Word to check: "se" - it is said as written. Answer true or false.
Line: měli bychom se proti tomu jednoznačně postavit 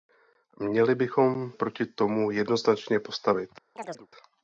false